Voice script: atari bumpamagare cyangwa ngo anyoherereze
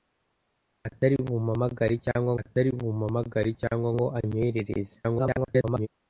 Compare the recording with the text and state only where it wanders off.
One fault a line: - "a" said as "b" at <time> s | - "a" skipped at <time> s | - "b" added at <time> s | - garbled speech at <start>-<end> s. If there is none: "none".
- "atari bumpamagare cyangwa" added at 2.4 s
- garbled speech at 5.0-5.9 s